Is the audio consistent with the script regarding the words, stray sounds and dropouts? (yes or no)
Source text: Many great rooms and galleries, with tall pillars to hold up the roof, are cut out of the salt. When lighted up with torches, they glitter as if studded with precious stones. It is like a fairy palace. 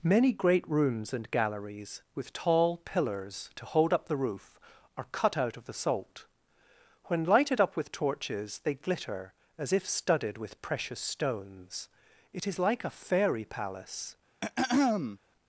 no